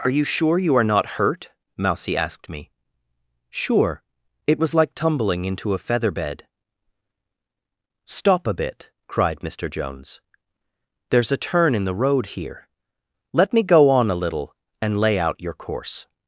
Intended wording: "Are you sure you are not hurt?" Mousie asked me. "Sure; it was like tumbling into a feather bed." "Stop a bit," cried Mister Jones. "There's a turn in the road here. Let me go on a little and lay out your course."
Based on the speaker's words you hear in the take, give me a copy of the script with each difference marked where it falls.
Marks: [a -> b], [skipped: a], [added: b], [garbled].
"Are you sure you are not hurt?" Mousie asked me. "Sure; it was like tumbling into a feather bed." "Stop a bit," cried Mister Jones. "There's a turn in the road here. Let me go on a little and lay out your course."